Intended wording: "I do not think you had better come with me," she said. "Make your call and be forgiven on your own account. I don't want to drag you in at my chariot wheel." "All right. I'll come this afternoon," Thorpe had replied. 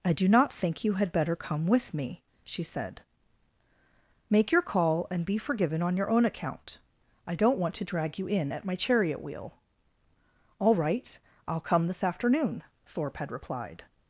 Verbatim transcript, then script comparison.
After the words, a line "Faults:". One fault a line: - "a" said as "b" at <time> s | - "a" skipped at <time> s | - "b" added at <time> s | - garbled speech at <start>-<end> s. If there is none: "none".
"I do not think you had better come with me," she said. "Make your call and be forgiven on your own account. I don't want to drag you in at my chariot wheel." "All right. I'll come this afternoon," Thorpe had replied.
Faults:
none